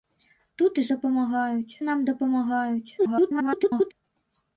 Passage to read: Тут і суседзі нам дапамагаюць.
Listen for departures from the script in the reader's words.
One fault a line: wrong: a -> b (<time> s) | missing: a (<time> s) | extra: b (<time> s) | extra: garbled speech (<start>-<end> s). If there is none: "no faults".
wrong: суседзі -> дапамагаюць (0.9 s)
extra: garbled speech (3.0-3.9 s)